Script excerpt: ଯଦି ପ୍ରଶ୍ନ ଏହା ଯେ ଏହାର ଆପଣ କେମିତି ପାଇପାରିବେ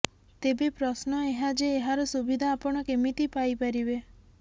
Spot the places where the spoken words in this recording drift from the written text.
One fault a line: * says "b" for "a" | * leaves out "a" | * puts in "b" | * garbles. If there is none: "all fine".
* says "ତେବେ" for "ଯଦି"
* puts in "ସୁବିଧା"